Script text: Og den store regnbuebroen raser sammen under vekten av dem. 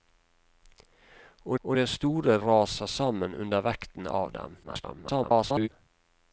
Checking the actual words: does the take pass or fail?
fail